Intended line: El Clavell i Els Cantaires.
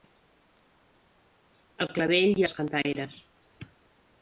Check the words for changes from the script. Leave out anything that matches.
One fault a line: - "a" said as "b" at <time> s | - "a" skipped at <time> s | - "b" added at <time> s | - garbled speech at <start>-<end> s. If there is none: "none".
none